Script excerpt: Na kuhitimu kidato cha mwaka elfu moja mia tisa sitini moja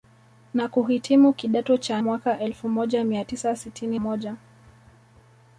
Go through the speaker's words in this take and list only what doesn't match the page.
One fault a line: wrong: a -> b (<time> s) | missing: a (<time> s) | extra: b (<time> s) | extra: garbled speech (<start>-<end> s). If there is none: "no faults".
no faults